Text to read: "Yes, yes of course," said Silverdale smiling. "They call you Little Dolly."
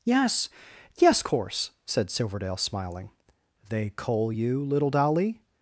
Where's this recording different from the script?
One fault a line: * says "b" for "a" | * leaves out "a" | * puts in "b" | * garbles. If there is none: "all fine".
* leaves out "of"
* says "coal" for "call"